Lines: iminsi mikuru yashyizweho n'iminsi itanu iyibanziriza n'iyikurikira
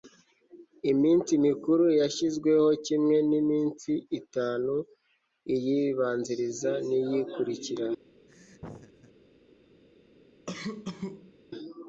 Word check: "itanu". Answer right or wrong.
right